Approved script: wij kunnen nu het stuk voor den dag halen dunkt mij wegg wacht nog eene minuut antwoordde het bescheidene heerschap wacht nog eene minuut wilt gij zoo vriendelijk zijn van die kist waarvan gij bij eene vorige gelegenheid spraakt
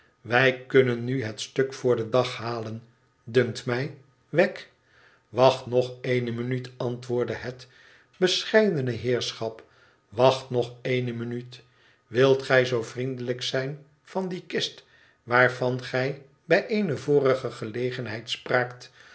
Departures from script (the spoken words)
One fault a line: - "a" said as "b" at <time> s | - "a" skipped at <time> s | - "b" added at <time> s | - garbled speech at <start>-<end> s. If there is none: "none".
none